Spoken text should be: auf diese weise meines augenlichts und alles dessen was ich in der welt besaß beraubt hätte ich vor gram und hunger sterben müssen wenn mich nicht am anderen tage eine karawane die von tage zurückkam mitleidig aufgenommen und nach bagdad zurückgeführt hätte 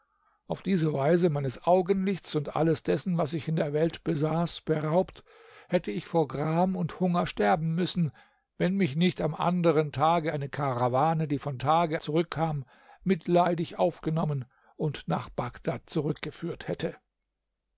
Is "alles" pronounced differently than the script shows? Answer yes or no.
no